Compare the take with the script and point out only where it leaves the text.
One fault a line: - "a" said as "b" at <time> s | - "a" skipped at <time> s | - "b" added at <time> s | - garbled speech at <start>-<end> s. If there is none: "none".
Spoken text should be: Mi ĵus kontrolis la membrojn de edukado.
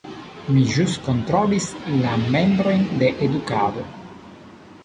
none